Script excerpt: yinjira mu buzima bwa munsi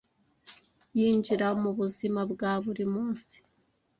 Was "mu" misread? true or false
false